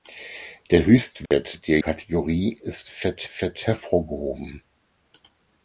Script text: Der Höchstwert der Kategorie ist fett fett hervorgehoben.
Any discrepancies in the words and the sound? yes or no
yes